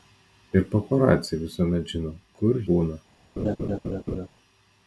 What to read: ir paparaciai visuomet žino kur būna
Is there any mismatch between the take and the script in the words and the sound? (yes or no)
yes